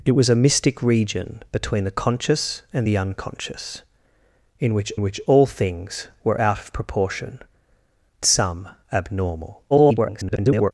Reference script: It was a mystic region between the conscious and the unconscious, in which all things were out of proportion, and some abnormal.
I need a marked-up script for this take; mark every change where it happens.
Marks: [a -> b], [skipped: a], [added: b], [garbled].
It was a mystic region between the conscious and the unconscious, in which [added: which] all things were out of proportion, [skipped: and] some abnormal. [garbled]